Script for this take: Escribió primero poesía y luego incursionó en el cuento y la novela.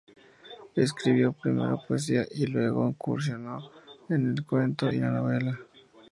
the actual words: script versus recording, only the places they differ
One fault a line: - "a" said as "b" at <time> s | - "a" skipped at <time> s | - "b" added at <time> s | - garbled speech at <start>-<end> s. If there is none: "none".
none